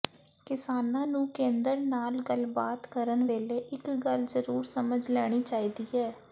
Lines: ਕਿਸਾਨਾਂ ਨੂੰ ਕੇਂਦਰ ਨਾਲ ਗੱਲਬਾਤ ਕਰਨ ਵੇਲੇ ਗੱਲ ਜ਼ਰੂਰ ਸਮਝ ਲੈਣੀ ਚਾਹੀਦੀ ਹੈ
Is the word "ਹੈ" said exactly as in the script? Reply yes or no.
yes